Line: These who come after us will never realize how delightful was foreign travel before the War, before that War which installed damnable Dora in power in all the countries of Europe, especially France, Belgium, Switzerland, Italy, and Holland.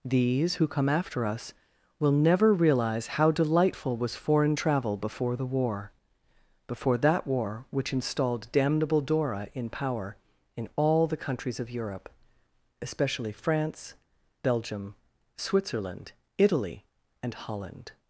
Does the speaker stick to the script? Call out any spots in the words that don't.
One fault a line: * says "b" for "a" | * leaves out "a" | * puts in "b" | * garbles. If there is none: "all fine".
all fine